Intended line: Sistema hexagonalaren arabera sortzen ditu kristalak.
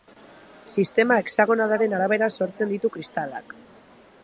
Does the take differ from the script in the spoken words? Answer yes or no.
no